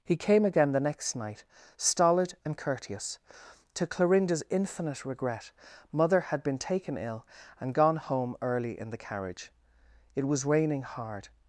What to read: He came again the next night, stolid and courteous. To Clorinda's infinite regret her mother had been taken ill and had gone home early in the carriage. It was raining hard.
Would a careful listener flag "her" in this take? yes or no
yes